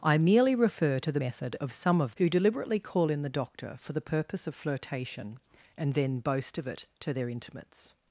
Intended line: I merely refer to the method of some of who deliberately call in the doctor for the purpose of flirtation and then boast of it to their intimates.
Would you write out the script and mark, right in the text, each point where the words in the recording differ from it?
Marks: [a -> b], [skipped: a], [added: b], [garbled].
I merely refer to the method of some of who deliberately call in the doctor for the purpose of flirtation and then boast of it to their intimates.